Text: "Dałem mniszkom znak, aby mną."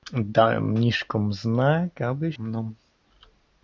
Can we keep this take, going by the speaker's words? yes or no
yes